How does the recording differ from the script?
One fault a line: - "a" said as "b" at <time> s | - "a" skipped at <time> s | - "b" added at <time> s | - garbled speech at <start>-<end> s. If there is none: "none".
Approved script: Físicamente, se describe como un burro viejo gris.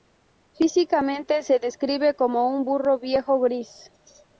none